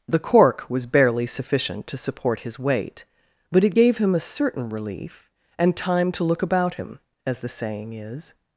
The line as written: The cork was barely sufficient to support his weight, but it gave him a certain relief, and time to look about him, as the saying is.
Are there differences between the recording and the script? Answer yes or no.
no